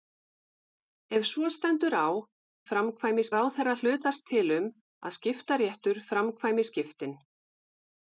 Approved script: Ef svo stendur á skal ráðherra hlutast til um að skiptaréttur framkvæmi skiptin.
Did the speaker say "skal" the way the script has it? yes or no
no